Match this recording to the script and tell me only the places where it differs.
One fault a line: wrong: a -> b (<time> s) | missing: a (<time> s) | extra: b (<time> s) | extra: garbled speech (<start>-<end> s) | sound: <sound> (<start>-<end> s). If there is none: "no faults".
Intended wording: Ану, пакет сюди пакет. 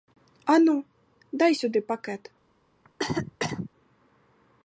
wrong: пакет -> дай (1.3 s)
sound: cough (2.8-3.7 s)